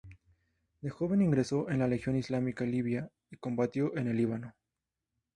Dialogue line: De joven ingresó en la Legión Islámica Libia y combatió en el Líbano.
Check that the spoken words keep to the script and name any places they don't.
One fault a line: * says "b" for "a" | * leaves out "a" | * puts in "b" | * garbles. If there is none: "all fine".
all fine